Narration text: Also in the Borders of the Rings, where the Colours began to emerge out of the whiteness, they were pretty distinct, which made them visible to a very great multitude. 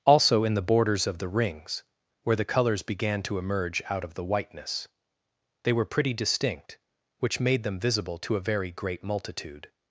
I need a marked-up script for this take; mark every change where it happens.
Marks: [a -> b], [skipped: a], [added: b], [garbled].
Also in the Borders of the Rings, where the Colours began to emerge out of the whiteness, they were pretty distinct, which made them visible to a very great multitude.